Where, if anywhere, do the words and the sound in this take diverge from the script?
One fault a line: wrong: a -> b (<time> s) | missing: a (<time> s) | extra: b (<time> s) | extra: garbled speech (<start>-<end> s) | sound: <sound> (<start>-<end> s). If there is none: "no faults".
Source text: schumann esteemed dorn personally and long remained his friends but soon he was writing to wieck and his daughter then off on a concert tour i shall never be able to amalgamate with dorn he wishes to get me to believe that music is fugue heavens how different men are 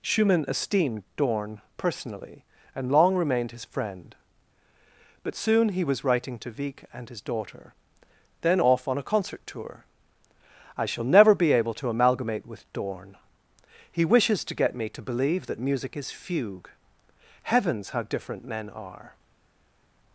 wrong: friends -> friend (3.6 s)